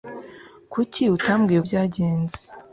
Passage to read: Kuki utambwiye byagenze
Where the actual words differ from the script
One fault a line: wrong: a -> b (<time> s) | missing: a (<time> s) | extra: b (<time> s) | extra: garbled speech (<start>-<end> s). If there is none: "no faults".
no faults